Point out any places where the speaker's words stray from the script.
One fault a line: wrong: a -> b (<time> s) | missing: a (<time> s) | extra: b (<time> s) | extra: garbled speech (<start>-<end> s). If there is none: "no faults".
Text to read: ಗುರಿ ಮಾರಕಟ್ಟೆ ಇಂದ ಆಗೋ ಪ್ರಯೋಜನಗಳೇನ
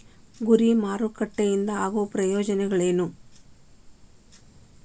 no faults